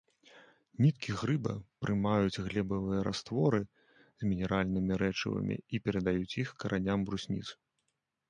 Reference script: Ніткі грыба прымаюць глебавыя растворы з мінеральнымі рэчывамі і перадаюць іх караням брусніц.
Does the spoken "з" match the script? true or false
true